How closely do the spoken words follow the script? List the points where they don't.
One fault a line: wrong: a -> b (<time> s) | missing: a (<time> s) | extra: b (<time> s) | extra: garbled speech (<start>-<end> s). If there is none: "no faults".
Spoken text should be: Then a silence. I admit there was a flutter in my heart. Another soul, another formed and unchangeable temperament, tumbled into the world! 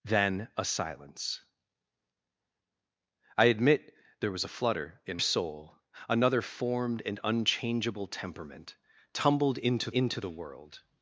missing: my heart Another (5.2 s)
extra: into (9.9 s)